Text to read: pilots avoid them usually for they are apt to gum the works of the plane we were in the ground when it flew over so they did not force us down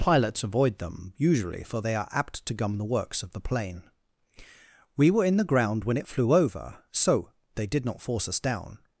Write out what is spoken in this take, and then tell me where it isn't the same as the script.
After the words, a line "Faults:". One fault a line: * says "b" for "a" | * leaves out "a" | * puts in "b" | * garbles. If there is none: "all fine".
pilots avoid them usually for they are apt to gum the works of the plane we were in the ground when it flew over so they did not force us down
Faults:
all fine